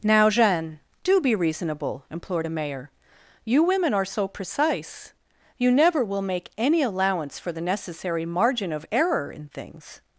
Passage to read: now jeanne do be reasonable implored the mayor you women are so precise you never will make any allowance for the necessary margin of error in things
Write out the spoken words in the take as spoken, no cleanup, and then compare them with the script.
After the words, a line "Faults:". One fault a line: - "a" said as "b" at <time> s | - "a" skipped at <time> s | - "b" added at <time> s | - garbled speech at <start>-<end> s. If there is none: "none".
now jeanne do be reasonable implored a mayor you women are so precise you never will make any allowance for the necessary margin of error in things
Faults:
- "the" said as "a" at 2.4 s